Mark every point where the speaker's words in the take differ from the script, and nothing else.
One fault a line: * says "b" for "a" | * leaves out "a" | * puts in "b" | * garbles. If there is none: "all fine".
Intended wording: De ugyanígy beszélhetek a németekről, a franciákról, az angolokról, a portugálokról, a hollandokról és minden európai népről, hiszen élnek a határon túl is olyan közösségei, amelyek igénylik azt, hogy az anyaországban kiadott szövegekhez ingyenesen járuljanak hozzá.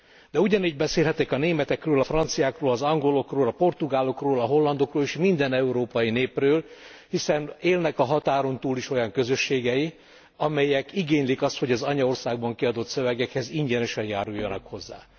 all fine